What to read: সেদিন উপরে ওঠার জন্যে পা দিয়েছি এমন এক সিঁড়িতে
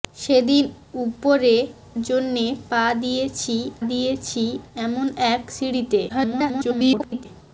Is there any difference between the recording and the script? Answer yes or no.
yes